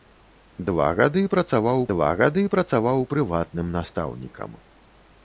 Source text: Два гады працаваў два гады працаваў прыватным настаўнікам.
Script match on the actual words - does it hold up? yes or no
yes